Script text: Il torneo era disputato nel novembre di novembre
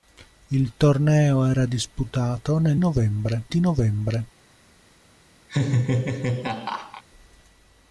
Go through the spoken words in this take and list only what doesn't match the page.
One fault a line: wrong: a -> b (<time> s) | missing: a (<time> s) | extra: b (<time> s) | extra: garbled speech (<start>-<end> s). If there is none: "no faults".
no faults